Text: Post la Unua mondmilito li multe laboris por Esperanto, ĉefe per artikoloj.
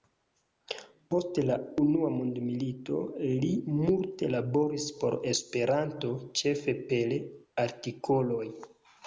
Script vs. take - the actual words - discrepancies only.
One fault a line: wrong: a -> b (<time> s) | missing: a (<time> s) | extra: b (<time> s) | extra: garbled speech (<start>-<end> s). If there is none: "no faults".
no faults